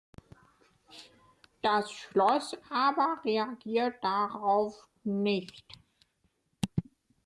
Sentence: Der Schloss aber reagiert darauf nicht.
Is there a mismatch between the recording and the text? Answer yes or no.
yes